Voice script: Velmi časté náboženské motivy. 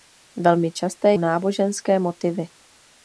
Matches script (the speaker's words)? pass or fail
pass